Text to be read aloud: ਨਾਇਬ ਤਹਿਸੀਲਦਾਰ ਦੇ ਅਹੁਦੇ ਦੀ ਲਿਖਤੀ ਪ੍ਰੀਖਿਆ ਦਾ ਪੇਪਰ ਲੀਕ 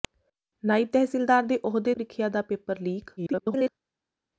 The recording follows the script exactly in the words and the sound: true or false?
false